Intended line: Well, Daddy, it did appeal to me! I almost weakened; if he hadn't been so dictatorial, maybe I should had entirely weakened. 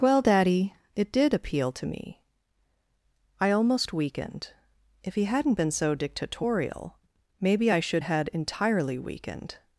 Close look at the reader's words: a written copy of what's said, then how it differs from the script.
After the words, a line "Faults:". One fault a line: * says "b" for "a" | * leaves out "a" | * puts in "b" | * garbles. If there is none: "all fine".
Well, Daddy, it did appeal to me! I almost weakened; if he hadn't been so dictatorial, maybe I should had entirely weakened.
Faults:
all fine